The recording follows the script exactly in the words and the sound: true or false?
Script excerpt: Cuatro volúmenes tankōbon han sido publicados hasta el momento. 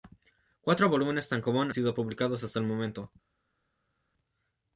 false